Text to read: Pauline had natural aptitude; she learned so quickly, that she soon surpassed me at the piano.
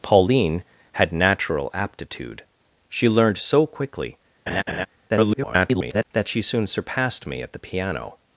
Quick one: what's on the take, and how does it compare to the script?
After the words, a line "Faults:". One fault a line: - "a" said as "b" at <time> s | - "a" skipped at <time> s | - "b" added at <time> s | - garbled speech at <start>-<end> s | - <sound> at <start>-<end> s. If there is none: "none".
Pauline had natural aptitude; she learned so quickly, [garbled] that she soon surpassed me at the piano.
Faults:
- laugh at 4.5-4.9 s
- garbled speech at 5.1-6.0 s